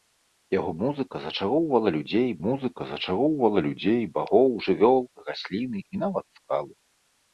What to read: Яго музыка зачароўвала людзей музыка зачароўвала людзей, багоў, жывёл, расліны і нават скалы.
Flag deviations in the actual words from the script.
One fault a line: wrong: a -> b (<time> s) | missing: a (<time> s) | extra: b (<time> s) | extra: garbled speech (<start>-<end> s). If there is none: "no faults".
no faults